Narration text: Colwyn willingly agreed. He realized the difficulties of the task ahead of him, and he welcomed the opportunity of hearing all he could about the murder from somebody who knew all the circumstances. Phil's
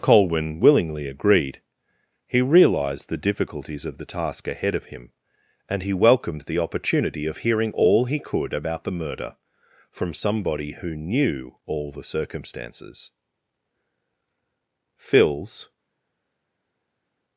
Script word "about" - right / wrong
right